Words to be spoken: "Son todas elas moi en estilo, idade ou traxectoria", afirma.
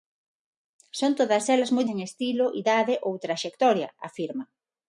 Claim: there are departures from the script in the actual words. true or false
false